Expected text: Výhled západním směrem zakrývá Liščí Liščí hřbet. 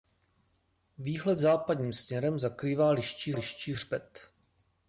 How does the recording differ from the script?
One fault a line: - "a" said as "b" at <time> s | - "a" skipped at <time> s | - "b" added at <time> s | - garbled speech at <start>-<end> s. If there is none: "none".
none